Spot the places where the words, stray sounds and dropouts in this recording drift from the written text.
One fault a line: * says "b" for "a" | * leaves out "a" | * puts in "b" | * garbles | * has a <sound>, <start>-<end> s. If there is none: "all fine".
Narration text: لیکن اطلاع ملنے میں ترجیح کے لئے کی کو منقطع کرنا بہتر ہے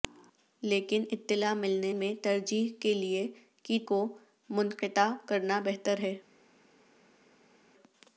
all fine